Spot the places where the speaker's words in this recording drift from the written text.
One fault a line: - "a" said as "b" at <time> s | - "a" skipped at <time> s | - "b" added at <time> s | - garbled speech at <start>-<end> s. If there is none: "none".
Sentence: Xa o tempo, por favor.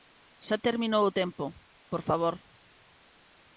- "terminou" added at 0.7 s